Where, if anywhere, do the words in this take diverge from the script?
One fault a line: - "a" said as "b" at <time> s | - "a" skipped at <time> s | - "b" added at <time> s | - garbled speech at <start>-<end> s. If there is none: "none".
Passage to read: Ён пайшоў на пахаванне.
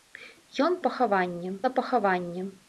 - "пайшоў" said as "пахаванне" at 0.9 s